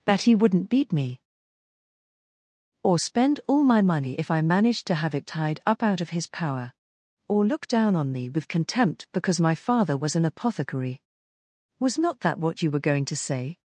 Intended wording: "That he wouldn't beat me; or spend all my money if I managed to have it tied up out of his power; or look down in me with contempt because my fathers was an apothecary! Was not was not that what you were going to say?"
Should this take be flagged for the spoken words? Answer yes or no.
yes